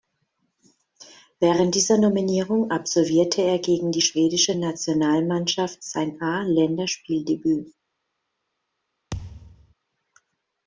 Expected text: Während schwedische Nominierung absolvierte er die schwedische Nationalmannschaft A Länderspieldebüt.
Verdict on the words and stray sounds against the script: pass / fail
fail